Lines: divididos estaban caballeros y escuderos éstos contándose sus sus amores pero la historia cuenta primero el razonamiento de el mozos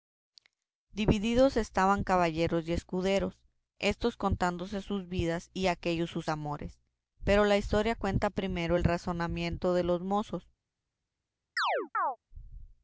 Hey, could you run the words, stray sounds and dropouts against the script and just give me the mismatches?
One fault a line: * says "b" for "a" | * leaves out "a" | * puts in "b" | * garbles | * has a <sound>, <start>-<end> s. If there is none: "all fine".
* puts in "vidas y aquéllos"
* says "los" for "el"
* has a chirp, 11.6-12.2 s